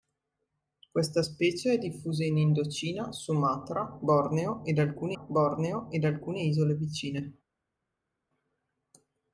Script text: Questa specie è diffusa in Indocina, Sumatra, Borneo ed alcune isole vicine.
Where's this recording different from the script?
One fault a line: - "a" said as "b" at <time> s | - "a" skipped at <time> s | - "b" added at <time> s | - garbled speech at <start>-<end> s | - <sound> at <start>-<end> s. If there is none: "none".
- "Borneo ed alcune" added at 5.1 s